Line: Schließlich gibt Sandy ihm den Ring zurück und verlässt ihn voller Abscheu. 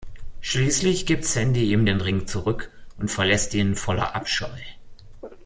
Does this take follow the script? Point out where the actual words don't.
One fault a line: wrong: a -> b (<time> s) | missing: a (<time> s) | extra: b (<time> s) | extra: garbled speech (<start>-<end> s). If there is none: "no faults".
no faults